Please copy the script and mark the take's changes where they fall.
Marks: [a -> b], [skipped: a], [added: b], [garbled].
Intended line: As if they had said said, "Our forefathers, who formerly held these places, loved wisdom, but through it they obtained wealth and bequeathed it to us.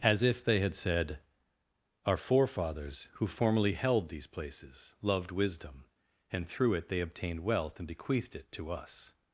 As if they had said [skipped: said,] "Our forefathers, who formerly held these places, loved wisdom, [but -> and] through it they obtained wealth and bequeathed it to us.